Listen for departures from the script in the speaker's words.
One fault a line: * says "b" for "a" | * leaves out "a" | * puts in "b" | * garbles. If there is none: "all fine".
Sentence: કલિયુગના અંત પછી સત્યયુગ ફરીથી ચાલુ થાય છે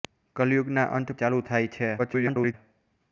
* leaves out "પછી સત્યયુગ ફરીથી"
* garbles